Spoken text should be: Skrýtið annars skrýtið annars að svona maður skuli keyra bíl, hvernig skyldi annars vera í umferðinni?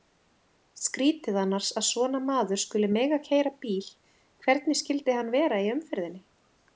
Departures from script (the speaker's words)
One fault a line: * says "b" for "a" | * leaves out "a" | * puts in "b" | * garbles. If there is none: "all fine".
* leaves out "skrýtið annars"
* puts in "mega"
* says "hann" for "annars"